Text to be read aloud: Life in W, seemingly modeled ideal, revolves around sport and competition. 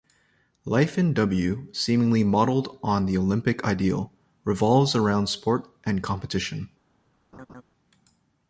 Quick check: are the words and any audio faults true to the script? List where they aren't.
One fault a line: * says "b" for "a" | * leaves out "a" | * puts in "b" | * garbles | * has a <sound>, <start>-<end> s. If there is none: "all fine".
* puts in "on the Olympic"
* has a laugh, 7.3-7.6 s